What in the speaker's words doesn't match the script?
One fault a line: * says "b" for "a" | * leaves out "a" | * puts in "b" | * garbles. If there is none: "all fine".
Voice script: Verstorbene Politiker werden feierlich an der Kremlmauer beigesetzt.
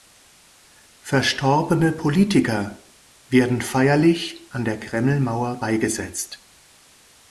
all fine